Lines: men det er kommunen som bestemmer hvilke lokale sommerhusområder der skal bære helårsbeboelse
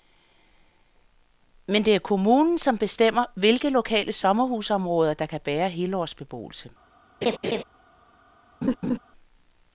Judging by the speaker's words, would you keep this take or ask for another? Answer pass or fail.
fail